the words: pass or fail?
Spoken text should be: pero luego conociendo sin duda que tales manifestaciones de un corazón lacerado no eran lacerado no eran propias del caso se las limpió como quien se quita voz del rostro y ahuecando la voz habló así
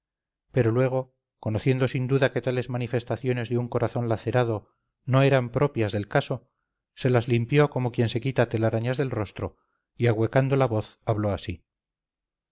fail